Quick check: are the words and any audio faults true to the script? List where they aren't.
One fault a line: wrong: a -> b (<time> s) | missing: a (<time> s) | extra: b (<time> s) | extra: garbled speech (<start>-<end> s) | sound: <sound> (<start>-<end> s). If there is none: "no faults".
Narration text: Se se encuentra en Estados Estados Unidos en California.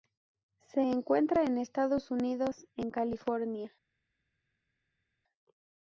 missing: se (0.8 s)
missing: Estados (2.1 s)